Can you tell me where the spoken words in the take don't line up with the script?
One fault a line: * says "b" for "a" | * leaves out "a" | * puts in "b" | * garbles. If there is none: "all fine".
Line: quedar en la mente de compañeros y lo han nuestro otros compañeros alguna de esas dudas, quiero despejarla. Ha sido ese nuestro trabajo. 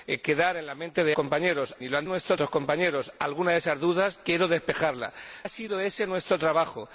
all fine